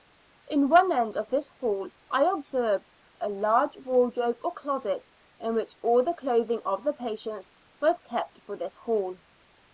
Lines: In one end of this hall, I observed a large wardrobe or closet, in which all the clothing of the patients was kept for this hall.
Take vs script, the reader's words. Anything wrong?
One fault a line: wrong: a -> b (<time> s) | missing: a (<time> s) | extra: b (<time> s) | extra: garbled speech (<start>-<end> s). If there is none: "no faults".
no faults